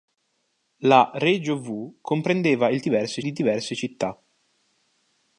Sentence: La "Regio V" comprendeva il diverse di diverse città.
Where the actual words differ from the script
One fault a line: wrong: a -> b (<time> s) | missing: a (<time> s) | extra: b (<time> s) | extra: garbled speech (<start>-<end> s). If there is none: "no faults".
no faults